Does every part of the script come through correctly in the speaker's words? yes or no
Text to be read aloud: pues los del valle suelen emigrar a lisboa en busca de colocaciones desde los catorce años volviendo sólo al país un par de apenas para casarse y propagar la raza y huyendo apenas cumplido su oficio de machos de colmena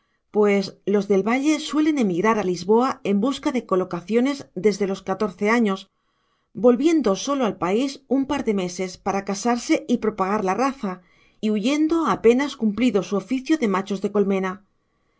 no